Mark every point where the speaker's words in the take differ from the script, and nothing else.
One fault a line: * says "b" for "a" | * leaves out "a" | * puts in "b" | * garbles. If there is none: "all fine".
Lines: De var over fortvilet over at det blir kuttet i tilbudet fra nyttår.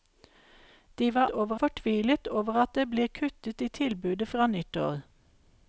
all fine